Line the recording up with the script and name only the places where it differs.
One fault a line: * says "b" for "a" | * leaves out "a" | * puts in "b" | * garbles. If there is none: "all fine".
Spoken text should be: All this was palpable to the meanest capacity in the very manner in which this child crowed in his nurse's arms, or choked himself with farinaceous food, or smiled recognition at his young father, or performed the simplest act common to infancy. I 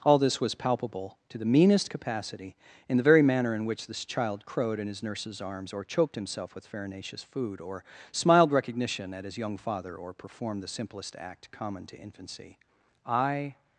all fine